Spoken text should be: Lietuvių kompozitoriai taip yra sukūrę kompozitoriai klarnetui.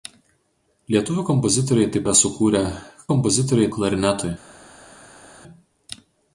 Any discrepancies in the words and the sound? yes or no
no